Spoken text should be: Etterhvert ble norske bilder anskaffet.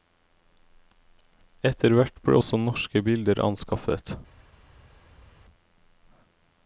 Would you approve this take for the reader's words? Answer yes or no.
no